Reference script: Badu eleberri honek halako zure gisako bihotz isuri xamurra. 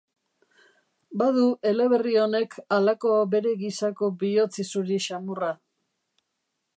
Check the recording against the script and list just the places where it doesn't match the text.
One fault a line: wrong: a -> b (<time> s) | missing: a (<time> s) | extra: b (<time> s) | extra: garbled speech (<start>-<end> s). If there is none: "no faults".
wrong: zure -> bere (3.4 s)